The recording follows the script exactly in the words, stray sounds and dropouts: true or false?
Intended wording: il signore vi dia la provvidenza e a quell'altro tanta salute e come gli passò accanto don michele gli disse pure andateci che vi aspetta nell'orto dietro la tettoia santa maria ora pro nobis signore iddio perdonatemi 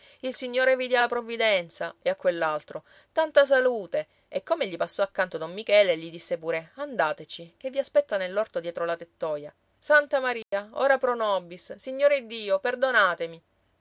false